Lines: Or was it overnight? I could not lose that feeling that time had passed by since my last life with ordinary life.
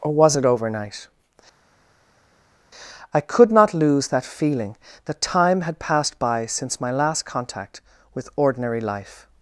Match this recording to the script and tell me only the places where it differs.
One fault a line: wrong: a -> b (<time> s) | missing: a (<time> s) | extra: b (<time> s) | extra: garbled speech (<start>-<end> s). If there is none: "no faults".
wrong: life -> contact (7.2 s)